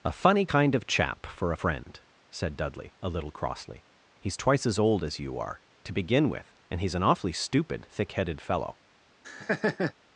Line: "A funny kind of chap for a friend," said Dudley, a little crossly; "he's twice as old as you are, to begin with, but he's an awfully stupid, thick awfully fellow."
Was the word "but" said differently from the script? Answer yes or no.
yes